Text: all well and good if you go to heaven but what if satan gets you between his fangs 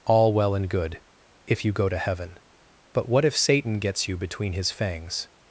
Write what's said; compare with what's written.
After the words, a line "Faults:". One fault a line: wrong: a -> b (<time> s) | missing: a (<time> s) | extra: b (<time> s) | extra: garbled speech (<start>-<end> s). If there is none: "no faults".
all well and good if you go to heaven but what if satan gets you between his fangs
Faults:
no faults